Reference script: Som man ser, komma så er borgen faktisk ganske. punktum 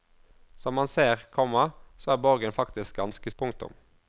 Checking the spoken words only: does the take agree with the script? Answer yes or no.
yes